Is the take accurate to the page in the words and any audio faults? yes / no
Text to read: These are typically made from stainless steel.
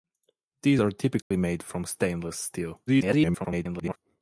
no